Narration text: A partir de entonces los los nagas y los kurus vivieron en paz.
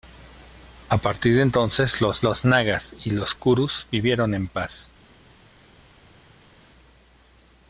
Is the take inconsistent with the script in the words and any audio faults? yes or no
no